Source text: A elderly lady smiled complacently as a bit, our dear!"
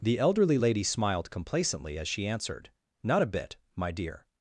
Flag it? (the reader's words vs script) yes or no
yes